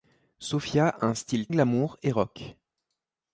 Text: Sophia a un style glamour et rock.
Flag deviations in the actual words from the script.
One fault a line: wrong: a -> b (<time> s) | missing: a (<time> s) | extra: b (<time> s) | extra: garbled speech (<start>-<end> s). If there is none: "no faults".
no faults